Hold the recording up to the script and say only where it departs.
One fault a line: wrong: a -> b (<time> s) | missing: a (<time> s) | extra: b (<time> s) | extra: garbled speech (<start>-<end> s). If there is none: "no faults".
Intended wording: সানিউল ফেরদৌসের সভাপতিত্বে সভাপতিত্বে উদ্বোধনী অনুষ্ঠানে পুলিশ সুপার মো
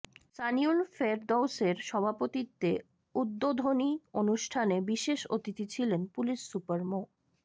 missing: সভাপতিত্বে (2.7 s)
extra: বিশেষ অতিথি ছিলেন (4.9 s)